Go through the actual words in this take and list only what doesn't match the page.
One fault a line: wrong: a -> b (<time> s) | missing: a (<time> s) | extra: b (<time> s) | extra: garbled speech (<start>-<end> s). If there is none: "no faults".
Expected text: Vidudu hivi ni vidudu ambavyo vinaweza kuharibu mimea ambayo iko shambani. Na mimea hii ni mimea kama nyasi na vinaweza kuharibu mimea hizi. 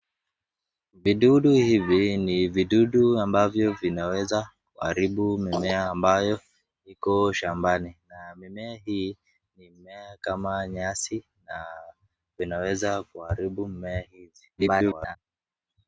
extra: garbled speech (14.6-15.2 s)